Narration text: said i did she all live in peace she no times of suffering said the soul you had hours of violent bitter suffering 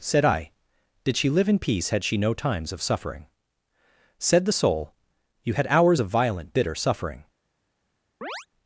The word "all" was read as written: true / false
false